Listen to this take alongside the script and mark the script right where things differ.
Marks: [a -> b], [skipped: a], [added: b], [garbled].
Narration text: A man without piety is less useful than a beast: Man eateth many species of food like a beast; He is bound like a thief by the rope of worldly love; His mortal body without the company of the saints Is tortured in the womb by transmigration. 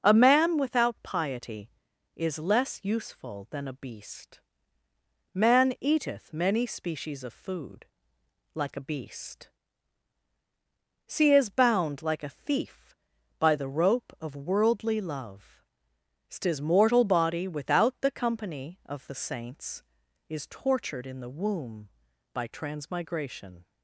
A man without piety is less useful than a beast: Man eateth many species of food like a beast; He is bound like a thief by the rope of worldly love; His mortal body without the company of the saints Is tortured in the womb by transmigration.